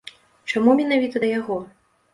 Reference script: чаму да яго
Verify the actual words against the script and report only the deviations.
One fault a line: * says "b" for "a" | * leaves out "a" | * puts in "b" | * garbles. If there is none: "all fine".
* puts in "менавіта"